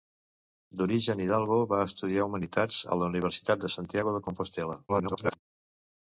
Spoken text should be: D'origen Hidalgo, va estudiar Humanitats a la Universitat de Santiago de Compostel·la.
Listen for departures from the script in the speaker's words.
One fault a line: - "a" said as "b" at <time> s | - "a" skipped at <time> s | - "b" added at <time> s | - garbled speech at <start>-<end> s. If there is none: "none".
- garbled speech at 4.9-5.4 s